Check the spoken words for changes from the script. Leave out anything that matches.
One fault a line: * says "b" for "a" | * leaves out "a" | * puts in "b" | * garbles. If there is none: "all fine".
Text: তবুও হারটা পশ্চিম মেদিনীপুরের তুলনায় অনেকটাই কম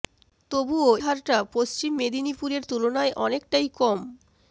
all fine